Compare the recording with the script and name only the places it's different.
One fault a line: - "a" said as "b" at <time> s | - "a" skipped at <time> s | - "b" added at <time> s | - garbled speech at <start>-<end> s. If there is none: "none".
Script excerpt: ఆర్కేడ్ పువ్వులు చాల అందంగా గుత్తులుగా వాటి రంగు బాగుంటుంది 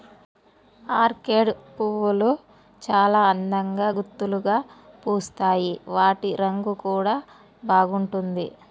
- "పూస్తాయి" added at 5.0 s
- "కూడా" added at 6.8 s